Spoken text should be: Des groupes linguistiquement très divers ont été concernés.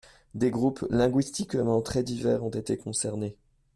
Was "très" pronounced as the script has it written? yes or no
yes